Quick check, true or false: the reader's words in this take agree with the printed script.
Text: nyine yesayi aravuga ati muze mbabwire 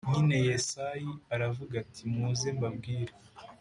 true